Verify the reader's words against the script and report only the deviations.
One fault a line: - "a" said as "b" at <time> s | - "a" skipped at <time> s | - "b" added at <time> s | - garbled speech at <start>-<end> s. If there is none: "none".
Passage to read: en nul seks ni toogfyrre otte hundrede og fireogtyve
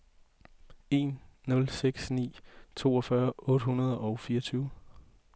none